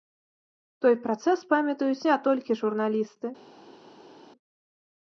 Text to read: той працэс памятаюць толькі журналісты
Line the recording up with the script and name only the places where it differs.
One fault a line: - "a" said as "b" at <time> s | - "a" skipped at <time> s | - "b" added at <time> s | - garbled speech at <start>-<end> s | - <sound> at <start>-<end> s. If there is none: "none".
- "не" added at 2.1 s